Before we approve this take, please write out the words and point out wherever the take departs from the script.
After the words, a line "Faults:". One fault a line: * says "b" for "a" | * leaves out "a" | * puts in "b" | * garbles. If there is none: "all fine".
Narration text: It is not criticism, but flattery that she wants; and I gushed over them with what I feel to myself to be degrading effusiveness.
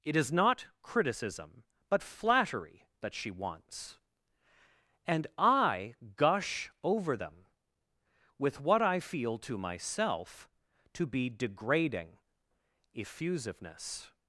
It is not criticism, but flattery that she wants; and I gush over them with what I feel to myself to be degrading effusiveness.
Faults:
* says "gush" for "gushed"